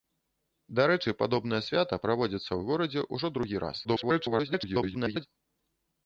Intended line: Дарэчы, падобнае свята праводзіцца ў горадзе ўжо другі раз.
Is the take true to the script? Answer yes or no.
no